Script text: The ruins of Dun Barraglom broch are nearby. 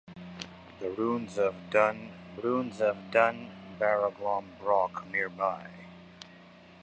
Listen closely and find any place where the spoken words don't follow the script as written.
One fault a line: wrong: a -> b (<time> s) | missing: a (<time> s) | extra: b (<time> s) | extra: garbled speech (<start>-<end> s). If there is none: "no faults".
extra: ruins of Dun (2.4 s)
missing: are (5.0 s)